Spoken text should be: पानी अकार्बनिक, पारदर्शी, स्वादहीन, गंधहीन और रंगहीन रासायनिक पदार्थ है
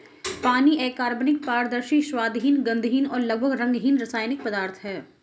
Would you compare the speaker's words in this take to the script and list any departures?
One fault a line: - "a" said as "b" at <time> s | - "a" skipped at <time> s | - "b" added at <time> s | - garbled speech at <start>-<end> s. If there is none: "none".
- "लगभग" added at 3.2 s